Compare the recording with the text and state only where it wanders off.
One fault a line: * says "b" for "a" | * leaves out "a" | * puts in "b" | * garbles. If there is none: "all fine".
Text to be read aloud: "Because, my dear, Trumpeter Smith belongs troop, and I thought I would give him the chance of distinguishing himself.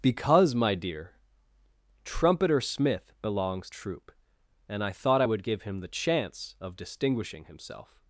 all fine